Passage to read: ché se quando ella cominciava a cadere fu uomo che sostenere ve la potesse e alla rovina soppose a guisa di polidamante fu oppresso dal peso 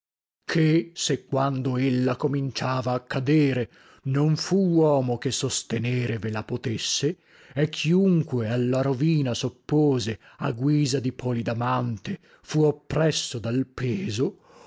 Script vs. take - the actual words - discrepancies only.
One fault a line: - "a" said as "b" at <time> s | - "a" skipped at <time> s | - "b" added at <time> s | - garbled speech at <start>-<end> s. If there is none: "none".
- "non" added at 4.0 s
- "chiunque" added at 7.7 s